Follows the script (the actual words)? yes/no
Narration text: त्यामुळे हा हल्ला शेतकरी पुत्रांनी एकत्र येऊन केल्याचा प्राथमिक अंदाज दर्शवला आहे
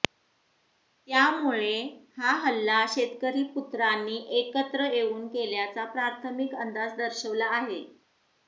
yes